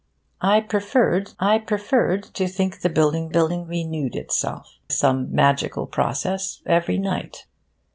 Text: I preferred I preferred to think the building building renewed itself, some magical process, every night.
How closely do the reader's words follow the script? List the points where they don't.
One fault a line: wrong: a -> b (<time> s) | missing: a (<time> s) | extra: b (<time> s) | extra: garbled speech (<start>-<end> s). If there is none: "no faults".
no faults